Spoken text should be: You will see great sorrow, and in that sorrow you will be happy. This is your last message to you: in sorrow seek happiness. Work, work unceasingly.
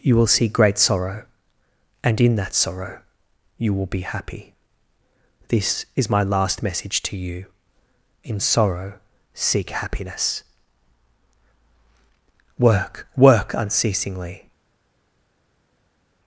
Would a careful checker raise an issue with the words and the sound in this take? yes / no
yes